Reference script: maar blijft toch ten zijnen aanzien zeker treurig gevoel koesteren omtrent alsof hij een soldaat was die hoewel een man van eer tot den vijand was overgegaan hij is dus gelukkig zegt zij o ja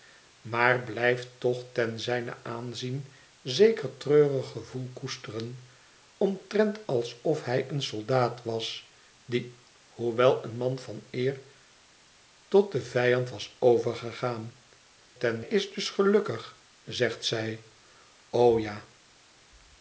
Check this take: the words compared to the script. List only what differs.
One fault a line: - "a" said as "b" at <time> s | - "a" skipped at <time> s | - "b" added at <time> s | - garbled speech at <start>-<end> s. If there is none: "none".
- "hij" said as "ten" at 15.2 s